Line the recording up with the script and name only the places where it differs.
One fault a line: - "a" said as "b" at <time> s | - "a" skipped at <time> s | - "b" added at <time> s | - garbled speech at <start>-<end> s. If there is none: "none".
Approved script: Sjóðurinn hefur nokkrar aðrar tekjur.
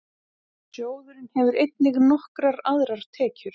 - "einnig" added at 1.6 s